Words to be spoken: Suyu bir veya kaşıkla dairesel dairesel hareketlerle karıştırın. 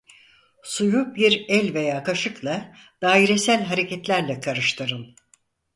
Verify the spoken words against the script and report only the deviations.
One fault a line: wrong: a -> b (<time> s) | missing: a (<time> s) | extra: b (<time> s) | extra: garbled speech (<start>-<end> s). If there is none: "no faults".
extra: el (1.5 s)
missing: dairesel (3.6 s)